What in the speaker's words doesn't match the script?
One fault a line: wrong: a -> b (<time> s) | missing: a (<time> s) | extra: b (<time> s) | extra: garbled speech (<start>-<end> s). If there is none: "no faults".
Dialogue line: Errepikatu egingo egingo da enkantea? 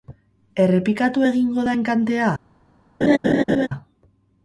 missing: egingo (1.6 s)